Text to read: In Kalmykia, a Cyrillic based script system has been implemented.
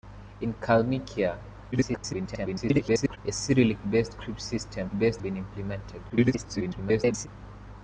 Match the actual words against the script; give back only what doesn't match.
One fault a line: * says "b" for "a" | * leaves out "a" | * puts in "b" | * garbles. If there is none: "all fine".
* garbles
* says "based" for "has"
* garbles